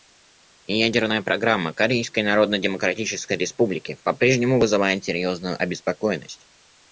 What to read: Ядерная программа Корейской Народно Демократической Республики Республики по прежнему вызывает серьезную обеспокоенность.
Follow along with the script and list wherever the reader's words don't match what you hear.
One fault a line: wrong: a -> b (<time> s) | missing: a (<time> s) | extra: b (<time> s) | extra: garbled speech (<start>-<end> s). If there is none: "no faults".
missing: Республики (4.0 s)